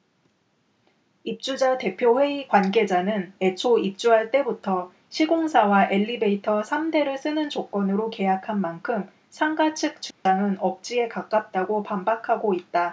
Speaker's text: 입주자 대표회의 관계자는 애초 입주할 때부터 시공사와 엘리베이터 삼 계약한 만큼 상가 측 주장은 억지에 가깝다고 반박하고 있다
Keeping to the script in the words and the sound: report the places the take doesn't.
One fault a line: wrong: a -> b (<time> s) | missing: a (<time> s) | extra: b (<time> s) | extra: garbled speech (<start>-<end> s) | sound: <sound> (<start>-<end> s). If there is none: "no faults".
extra: 대를 쓰는 조건으로 (6.9 s)
sound: dropout (10.1-10.3 s)